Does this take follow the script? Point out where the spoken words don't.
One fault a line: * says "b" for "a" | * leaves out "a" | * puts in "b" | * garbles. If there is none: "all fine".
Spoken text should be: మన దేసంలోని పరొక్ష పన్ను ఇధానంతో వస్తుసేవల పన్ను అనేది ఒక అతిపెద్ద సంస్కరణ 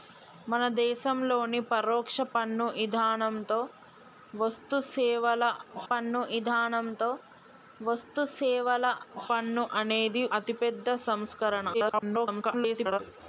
* puts in "ఇధానంతో వస్తుసేవల పన్ను"
* leaves out "ఒక"
* garbles